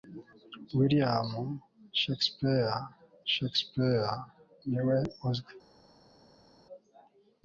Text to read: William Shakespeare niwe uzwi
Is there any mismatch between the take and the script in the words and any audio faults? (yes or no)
yes